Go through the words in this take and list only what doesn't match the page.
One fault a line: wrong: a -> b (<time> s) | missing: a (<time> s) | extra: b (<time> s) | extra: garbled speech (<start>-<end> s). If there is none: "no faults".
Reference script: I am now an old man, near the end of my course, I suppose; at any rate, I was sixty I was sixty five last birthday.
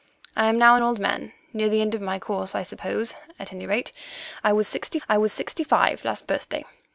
no faults